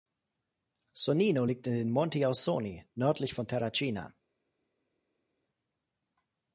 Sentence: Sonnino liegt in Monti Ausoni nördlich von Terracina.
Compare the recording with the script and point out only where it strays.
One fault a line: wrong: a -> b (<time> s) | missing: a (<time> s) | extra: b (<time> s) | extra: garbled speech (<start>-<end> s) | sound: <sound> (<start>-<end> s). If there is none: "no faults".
extra: den (1.7 s)